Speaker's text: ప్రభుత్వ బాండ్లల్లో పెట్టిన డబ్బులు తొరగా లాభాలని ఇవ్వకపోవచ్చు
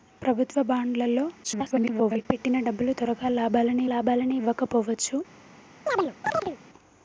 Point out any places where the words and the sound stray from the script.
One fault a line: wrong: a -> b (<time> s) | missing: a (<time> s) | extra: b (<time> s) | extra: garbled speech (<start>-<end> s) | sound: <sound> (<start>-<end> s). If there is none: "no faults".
extra: garbled speech (1.4-2.3 s)
extra: లాభాలని (3.9 s)
sound: chirp (5.9-6.6 s)